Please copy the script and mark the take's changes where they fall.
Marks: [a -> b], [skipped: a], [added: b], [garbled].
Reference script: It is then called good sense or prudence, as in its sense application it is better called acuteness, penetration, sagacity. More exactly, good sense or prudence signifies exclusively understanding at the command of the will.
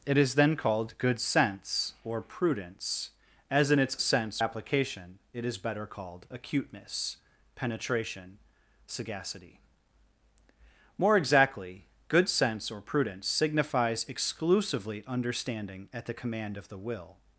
It is then called good sense or prudence, as in its sense application it is better called acuteness, penetration, sagacity. More exactly, good sense or prudence signifies exclusively understanding at the command of the will.